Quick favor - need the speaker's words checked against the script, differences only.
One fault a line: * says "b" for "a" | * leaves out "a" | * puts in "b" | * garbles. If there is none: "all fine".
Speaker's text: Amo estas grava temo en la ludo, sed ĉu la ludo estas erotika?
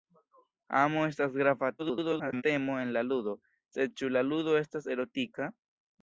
* garbles